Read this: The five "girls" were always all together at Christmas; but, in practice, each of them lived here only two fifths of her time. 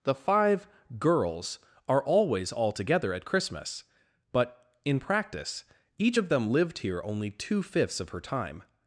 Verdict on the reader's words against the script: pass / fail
fail